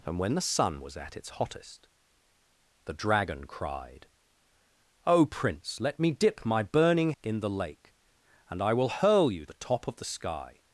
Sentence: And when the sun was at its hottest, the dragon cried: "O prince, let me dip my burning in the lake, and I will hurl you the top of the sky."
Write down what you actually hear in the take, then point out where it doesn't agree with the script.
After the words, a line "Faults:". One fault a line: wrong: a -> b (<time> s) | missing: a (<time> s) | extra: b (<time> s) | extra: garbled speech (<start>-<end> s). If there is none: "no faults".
And when the sun was at its hottest, the dragon cried: "O prince, let me dip my burning in the lake, and I will hurl you the top of the sky."
Faults:
no faults